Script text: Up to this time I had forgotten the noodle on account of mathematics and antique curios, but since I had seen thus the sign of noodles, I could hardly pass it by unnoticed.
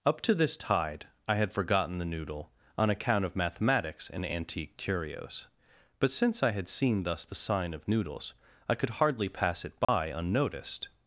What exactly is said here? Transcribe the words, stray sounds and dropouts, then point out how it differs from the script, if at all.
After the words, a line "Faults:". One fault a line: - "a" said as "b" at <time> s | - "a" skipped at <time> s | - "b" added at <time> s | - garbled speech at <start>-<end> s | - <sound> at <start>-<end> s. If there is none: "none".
Up to this tide I had forgotten the noodle on account of mathematics and antique curios, but since I had seen thus the sign of noodles, I could hardly pass it by unnoticed.
Faults:
- "time" said as "tide" at 0.6 s
- dropout at 9.8-9.9 s